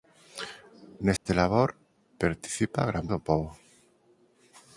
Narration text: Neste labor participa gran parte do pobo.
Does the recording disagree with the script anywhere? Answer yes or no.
yes